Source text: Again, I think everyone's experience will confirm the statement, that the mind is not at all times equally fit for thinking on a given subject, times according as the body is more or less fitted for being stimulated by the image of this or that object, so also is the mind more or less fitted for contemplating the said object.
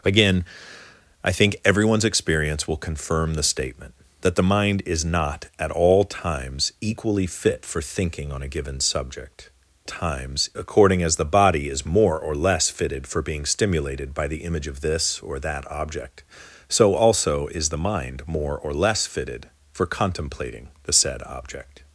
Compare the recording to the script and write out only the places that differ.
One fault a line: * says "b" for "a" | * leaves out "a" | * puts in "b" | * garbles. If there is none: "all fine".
all fine